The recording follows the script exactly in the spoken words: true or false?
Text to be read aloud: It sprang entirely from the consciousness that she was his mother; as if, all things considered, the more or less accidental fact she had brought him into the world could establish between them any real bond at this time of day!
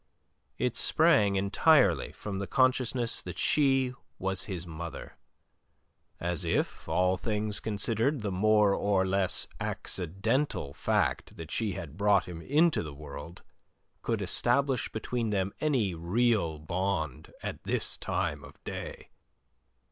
false